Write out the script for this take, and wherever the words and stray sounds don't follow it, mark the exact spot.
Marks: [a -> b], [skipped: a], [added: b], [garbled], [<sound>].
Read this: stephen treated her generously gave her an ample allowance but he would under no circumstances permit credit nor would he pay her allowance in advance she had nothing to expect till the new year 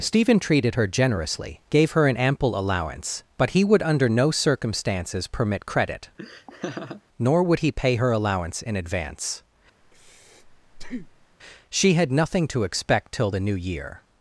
stephen treated her generously gave her an ample allowance but he would under no circumstances permit credit [laugh] nor would he pay her allowance in advance [breath] she had nothing to expect till the new year